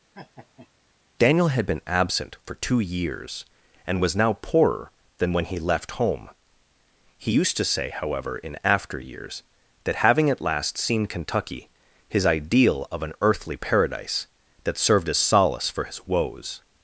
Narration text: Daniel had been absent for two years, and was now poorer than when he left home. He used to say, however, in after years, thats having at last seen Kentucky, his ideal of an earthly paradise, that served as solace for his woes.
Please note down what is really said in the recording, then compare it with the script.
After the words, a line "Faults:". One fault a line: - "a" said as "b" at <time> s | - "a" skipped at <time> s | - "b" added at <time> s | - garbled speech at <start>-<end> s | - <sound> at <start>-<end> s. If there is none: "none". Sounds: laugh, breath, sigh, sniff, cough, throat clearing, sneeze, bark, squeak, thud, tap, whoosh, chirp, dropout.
Daniel had been absent for two years, and was now poorer than when he left home. He used to say, however, in after years, that having at last seen Kentucky, his ideal of an earthly paradise, that served as solace for his woes.
Faults:
- laugh at 0.1-0.7 s
- "thats" said as "that" at 9.8 s